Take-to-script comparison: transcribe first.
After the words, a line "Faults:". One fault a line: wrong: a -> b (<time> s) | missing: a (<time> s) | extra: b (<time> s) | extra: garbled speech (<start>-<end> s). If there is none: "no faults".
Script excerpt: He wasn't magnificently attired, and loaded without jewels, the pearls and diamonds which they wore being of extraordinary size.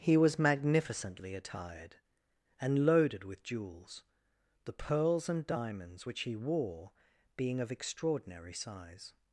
He was magnificently attired, and loaded with jewels, the pearls and diamonds which he wore being of extraordinary size.
Faults:
wrong: wasn't -> was (0.2 s)
wrong: without -> with (3.2 s)
wrong: they -> he (6.2 s)